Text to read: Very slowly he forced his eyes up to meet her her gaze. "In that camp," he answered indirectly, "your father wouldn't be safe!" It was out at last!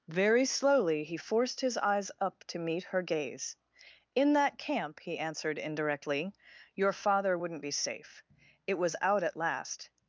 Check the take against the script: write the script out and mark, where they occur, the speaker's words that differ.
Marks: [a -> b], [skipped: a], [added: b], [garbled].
Very slowly he forced his eyes up to meet her [skipped: her] gaze. "In that camp," he answered indirectly, "your father wouldn't be safe!" It was out at last!